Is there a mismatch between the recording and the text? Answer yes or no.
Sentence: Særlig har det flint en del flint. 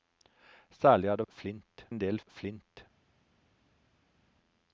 no